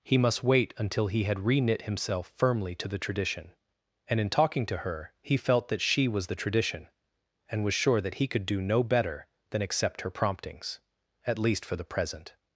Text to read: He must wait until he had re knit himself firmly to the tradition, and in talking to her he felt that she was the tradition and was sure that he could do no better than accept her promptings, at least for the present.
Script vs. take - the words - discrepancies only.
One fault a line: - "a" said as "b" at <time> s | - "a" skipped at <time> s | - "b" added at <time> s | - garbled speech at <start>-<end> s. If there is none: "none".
none